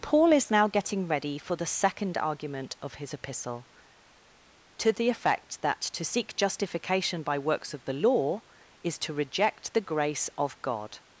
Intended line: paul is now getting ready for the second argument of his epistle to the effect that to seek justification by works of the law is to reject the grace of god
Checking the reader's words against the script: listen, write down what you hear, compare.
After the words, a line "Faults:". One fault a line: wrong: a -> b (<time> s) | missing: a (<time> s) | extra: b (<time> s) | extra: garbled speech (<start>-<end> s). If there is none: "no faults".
paul is now getting ready for the second argument of his epistle to the effect that to seek justification by works of the law is to reject the grace of god
Faults:
no faults